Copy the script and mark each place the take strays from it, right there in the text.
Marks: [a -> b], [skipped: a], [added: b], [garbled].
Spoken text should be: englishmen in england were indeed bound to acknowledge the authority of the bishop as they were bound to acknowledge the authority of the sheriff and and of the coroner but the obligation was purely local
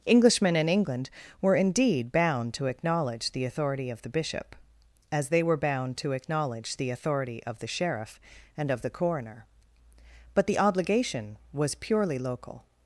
englishmen in england were indeed bound to acknowledge the authority of the bishop as they were bound to acknowledge the authority of the sheriff and [skipped: and] of the coroner but the obligation was purely local